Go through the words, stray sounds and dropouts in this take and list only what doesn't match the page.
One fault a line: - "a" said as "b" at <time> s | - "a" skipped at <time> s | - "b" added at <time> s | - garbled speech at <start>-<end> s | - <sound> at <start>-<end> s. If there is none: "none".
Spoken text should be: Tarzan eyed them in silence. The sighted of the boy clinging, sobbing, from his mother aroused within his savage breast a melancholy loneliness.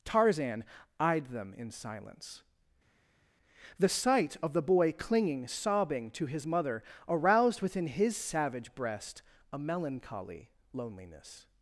- "sighted" said as "sight" at 3.9 s
- "from" said as "to" at 6.1 s